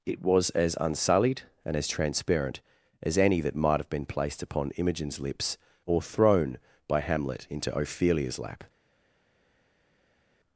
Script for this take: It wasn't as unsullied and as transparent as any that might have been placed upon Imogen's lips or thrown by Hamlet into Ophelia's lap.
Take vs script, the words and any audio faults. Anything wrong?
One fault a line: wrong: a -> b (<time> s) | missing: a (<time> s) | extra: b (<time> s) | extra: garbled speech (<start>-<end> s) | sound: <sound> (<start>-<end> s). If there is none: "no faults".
wrong: wasn't -> was (0.2 s)